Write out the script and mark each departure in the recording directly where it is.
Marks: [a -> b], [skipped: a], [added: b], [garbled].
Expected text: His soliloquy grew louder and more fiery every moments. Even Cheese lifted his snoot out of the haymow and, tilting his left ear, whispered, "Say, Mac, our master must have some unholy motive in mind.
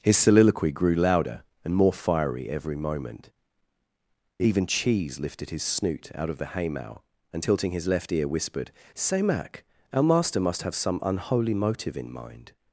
His soliloquy grew louder and more fiery every [moments. -> moment] Even Cheese lifted his snoot out of the haymow and, tilting his left ear, whispered, "Say, Mac, our master must have some unholy motive in mind.